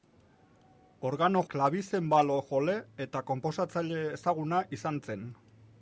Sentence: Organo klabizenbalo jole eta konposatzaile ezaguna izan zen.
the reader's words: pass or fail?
pass